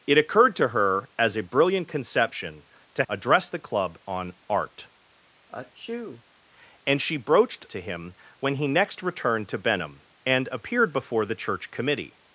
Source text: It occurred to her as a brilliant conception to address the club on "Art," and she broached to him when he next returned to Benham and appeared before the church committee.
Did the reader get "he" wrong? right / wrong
right